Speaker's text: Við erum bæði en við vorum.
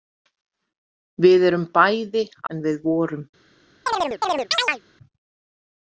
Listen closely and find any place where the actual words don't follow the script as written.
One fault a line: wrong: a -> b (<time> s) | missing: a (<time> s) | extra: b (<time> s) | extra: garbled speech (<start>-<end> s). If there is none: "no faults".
no faults